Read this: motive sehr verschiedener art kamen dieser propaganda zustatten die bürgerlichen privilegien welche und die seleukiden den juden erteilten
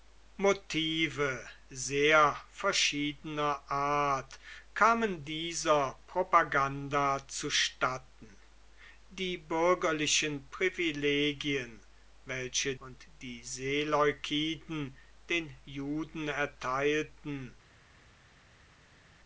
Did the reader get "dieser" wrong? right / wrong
right